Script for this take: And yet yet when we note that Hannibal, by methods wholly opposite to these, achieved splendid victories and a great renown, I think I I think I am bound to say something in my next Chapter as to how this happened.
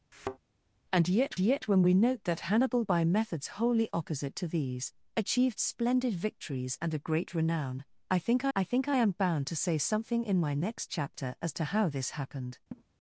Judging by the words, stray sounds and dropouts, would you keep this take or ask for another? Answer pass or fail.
fail